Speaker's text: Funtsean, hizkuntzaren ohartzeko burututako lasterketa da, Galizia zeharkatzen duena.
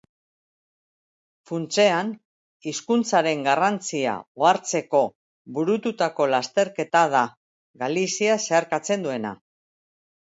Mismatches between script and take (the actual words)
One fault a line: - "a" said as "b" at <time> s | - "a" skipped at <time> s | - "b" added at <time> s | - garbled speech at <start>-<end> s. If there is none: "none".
- "garrantzia" added at 3.5 s